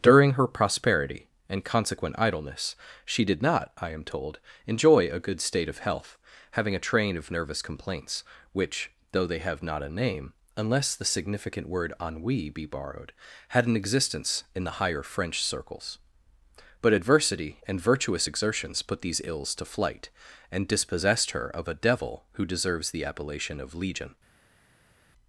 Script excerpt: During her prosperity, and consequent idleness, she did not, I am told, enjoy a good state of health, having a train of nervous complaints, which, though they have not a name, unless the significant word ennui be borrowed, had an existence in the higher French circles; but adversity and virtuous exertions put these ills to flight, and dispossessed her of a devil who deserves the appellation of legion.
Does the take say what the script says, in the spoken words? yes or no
yes